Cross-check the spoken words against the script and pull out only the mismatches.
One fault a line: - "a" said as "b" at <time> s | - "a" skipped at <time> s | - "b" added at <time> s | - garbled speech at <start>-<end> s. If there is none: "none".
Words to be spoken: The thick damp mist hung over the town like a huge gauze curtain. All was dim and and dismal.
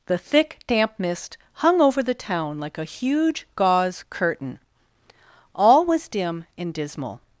- "and" skipped at 6.7 s